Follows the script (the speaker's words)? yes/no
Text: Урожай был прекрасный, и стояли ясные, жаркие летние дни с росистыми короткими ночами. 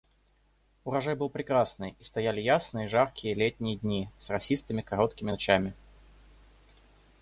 yes